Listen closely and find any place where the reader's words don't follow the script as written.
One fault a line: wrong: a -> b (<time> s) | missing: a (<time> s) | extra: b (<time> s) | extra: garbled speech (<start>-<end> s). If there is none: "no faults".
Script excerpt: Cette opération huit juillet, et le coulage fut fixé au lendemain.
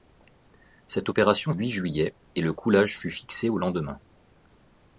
no faults